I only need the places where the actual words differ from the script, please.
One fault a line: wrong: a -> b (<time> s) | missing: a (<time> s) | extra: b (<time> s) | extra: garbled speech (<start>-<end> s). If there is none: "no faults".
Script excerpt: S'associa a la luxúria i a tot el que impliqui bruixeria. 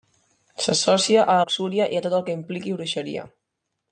missing: la (1.4 s)